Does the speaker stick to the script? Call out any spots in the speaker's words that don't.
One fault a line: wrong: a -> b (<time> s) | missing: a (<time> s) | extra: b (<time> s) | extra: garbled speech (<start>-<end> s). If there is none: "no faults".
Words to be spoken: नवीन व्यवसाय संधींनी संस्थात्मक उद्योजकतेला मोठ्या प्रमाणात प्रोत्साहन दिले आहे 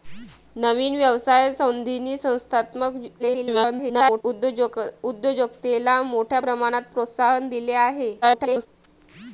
extra: garbled speech (3.2-4.2 s)
extra: garbled speech (8.2-8.7 s)